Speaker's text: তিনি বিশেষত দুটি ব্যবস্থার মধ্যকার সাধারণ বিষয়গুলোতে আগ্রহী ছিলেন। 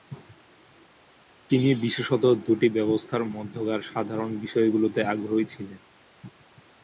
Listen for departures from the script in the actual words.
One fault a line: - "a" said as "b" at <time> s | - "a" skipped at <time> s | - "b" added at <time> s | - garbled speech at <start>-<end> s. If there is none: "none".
none